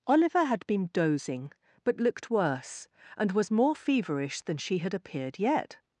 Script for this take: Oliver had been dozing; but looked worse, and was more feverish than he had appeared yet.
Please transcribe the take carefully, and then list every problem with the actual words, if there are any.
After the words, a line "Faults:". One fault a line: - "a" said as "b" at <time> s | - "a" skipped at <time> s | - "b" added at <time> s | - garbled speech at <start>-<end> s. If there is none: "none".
Oliver had been dozing; but looked worse, and was more feverish than she had appeared yet.
Faults:
- "he" said as "she" at 4.6 s